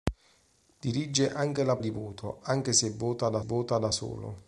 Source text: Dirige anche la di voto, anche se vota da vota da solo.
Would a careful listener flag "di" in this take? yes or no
no